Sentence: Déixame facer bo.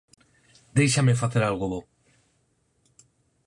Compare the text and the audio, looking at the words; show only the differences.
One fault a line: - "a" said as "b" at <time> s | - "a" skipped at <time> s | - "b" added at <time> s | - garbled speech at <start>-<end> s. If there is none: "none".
- "algo" added at 1.4 s